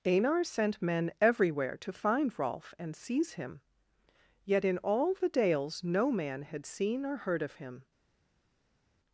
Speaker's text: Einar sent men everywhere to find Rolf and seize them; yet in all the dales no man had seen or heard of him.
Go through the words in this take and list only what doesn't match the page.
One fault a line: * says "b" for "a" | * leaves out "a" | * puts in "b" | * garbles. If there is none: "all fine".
* says "him" for "them"